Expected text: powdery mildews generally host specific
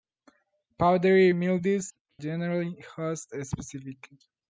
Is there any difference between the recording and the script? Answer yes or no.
no